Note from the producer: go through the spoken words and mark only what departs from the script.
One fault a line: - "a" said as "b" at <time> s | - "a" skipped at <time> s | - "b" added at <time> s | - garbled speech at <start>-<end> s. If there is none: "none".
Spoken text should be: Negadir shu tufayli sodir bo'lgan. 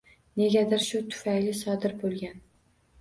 none